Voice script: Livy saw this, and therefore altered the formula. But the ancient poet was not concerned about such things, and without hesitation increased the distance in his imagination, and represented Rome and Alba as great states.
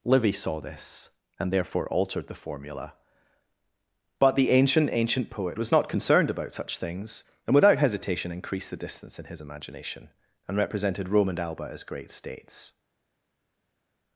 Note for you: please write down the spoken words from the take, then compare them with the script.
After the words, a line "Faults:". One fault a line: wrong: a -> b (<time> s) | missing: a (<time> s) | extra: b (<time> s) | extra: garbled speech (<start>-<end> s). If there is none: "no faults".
Livy saw this, and therefore altered the formula. But the ancient ancient poet was not concerned about such things, and without hesitation increased the distance in his imagination, and represented Rome and Alba as great states.
Faults:
extra: ancient (4.9 s)